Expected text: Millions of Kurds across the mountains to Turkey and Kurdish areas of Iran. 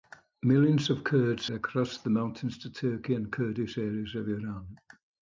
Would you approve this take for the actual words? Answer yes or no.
yes